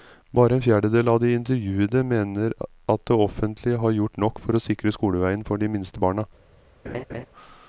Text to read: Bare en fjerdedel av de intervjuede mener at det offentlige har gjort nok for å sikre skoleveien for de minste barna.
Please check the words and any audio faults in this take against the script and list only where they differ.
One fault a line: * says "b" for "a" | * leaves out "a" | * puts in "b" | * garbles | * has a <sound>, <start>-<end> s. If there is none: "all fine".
* has a laugh, 6.8-7.3 s